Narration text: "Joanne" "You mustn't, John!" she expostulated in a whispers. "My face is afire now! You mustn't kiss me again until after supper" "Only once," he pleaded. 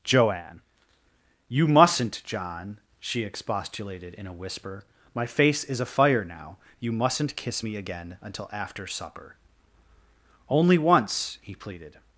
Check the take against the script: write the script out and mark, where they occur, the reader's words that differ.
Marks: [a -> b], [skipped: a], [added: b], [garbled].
"Joanne" "You mustn't, John!" she expostulated in a [whispers. -> whisper] "My face is afire now! You mustn't kiss me again until after supper" "Only once," he pleaded.